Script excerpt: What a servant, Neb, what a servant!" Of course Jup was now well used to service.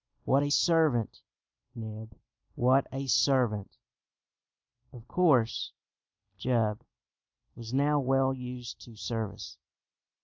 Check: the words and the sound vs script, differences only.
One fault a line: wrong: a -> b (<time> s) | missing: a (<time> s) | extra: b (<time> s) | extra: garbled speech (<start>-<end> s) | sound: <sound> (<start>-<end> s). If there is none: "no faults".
no faults